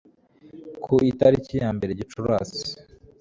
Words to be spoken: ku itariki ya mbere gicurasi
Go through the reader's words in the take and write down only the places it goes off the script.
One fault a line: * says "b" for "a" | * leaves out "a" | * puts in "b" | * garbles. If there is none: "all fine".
all fine